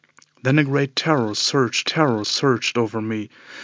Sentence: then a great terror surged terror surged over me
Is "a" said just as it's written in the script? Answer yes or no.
yes